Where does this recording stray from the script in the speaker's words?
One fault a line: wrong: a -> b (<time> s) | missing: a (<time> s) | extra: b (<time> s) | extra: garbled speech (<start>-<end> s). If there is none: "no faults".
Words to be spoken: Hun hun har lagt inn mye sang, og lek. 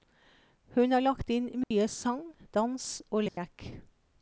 missing: hun (0.9 s)
extra: dans (2.5 s)